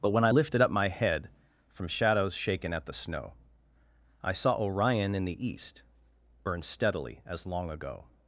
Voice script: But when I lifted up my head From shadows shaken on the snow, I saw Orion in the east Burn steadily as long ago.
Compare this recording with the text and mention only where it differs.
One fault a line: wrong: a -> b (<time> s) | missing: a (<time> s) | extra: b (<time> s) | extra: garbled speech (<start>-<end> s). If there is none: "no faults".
wrong: on -> at (2.7 s)